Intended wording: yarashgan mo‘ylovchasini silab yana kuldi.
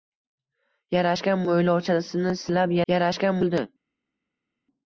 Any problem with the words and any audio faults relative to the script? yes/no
yes